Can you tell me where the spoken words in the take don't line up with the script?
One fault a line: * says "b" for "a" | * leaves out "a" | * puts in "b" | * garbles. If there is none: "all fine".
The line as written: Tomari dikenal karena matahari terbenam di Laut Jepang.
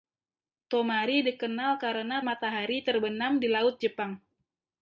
all fine